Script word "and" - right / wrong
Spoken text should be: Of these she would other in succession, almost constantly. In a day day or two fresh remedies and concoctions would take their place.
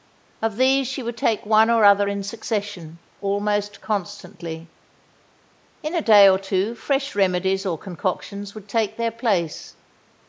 wrong